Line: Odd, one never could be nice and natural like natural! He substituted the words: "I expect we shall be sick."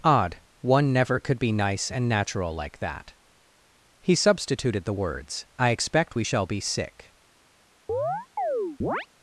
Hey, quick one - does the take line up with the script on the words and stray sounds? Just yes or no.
no